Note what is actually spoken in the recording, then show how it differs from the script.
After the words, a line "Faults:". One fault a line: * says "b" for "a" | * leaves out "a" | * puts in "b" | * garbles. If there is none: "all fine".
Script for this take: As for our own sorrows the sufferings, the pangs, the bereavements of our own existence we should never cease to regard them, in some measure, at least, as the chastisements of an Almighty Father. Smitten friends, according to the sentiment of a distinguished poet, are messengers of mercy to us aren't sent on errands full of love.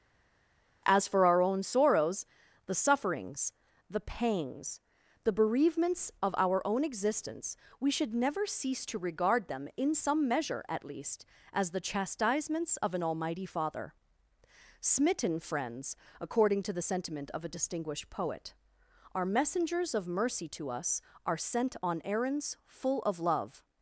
As for our own sorrows the sufferings, the pangs, the bereavements of our own existence we should never cease to regard them, in some measure, at least, as the chastisements of an Almighty Father. Smitten friends, according to the sentiment of a distinguished poet, are messengers of mercy to us are sent on errands full of love.
Faults:
* says "are" for "aren't"